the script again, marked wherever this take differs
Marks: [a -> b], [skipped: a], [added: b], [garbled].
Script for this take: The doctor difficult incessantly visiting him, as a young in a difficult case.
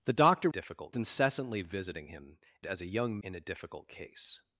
The doctor difficult incessantly visiting him, as a young in a difficult case.